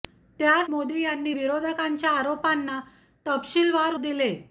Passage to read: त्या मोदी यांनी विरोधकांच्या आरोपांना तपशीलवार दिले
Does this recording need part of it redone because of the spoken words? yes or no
no